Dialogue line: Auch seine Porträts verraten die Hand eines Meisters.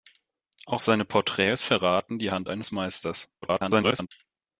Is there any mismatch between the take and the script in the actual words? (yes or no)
yes